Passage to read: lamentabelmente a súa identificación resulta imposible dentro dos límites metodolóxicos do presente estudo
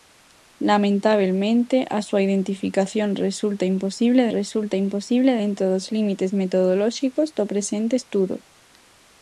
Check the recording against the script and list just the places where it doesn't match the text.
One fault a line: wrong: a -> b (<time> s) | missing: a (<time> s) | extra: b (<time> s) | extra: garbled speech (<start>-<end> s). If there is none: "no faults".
extra: resulta imposible (4.4 s)